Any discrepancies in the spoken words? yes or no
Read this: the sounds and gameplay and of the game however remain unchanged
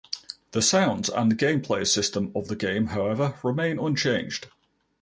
yes